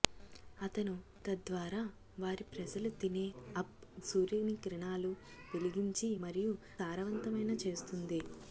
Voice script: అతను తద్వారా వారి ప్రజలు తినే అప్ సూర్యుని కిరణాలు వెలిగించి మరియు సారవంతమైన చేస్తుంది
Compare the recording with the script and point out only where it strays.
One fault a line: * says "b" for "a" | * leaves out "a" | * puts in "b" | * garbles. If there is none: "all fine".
all fine